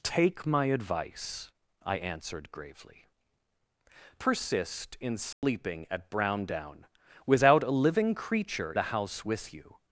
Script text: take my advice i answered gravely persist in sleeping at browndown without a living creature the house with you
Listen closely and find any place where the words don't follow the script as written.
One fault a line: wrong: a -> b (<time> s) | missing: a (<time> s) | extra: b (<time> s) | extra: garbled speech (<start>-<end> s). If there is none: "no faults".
no faults